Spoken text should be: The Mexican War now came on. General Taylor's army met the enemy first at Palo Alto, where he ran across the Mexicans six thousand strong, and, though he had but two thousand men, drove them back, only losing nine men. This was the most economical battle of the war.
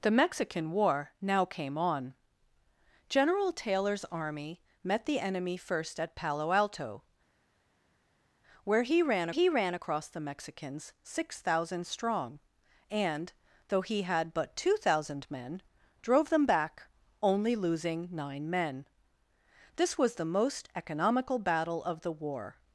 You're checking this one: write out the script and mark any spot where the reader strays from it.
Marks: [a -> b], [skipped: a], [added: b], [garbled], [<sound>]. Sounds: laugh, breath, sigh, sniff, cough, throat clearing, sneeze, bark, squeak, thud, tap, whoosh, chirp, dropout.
The Mexican War now came on. General Taylor's army met the enemy first at Palo Alto, where he ran [added: he ran] across the Mexicans six thousand strong, and, though he had but two thousand men, drove them back, only losing nine men. This was the most economical battle of the war.